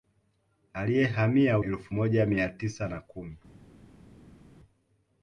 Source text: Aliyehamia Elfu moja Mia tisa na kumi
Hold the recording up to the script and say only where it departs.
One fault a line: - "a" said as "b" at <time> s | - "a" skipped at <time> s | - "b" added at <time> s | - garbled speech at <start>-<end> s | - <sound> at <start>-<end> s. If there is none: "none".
none